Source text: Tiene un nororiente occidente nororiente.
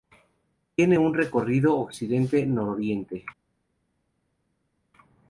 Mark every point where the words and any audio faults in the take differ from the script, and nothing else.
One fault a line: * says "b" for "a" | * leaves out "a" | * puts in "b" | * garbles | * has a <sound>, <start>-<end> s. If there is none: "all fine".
* says "recorrido" for "nororiente"